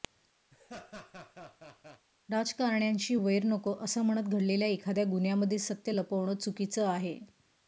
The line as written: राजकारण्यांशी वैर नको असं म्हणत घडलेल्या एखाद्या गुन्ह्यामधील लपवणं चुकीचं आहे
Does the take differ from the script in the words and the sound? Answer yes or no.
yes